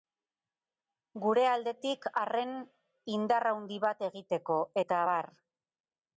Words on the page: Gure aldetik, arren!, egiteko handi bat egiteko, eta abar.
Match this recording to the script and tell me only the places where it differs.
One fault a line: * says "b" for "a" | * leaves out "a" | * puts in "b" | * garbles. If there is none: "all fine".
* says "indar" for "egiteko"